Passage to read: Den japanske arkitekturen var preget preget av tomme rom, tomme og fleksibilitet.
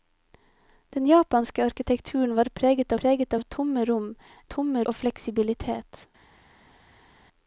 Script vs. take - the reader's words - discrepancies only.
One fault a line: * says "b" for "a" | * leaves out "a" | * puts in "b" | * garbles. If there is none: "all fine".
all fine